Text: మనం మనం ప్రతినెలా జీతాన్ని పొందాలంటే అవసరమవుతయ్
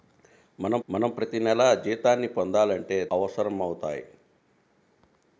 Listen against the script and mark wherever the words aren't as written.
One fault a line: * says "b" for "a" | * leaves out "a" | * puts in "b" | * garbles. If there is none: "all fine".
all fine